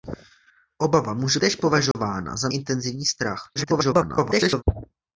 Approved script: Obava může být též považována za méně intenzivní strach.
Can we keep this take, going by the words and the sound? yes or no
no